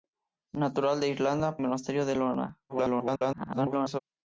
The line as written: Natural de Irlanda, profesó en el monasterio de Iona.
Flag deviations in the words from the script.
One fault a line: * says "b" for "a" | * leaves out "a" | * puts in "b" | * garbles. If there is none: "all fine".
* leaves out "profesó en"
* garbles